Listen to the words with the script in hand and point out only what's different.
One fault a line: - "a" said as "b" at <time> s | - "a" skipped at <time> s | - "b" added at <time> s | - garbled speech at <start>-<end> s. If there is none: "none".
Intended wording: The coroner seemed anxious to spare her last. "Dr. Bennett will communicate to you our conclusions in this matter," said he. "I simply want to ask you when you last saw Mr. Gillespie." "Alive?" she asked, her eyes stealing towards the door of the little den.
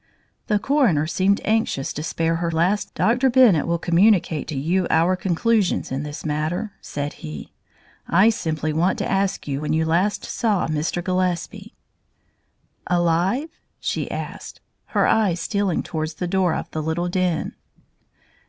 none